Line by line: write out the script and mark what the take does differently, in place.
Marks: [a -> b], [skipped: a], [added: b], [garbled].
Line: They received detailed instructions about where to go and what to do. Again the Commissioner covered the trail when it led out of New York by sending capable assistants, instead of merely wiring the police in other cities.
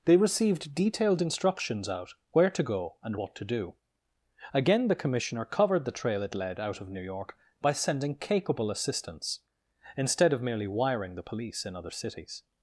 They received detailed instructions [about -> out] where to go and what to do. Again the Commissioner covered the trail [skipped: when] it led out of New York by sending capable assistants, instead of merely wiring the police in other cities.